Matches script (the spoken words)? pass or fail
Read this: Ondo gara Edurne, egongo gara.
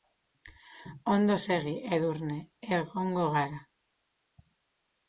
fail